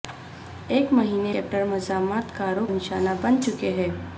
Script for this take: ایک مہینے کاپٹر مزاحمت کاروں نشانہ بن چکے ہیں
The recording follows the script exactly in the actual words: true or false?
true